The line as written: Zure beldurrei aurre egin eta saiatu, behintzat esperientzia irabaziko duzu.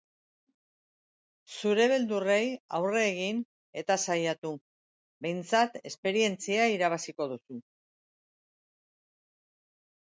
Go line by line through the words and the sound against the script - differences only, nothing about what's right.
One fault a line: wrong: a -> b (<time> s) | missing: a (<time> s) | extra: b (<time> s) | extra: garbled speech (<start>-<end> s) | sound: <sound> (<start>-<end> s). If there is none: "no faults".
no faults